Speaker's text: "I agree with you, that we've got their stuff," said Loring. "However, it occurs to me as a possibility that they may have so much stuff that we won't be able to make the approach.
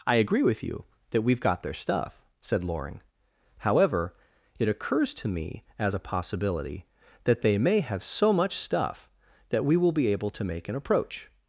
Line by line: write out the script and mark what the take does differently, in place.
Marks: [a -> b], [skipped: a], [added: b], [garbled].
"I agree with you, that we've got their stuff," said Loring. "However, it occurs to me as a possibility that they may have so much stuff that we [won't -> will] be able to make [the -> an] approach.